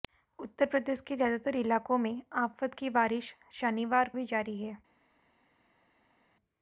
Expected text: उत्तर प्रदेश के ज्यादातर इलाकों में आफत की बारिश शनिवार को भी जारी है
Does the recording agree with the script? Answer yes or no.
no